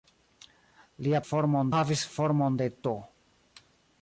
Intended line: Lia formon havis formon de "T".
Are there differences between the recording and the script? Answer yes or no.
no